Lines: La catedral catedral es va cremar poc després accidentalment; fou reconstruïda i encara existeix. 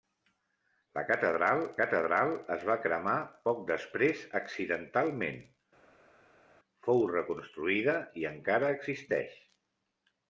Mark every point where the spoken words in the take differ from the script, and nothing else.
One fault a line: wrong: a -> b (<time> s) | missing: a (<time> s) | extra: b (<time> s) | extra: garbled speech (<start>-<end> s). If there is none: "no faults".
no faults